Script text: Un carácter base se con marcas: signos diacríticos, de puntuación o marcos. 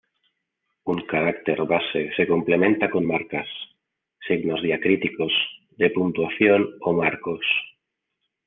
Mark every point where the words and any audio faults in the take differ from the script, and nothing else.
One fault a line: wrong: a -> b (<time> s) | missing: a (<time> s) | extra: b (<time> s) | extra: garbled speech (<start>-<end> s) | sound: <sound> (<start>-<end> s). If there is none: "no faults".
extra: complementa (2.2 s)